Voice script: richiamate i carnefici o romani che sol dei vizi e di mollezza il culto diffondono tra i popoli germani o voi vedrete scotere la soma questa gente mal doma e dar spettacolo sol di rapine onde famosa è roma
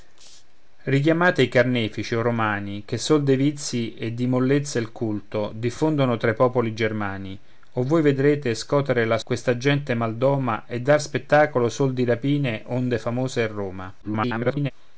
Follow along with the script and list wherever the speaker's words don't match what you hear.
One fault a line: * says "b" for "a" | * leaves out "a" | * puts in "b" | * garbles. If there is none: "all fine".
* leaves out "soma"
* garbles